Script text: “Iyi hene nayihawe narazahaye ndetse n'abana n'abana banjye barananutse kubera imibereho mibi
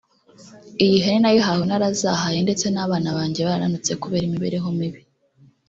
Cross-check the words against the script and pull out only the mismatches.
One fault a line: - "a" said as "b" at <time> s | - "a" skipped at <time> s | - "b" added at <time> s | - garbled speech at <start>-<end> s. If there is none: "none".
- "n'abana" skipped at 3.1 s